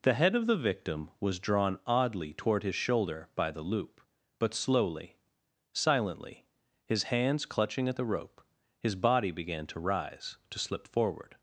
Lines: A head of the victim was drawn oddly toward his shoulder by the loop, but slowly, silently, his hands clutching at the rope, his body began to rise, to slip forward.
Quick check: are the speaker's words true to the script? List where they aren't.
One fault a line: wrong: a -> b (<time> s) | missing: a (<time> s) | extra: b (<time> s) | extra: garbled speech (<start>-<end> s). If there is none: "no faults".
wrong: A -> The (0.0 s)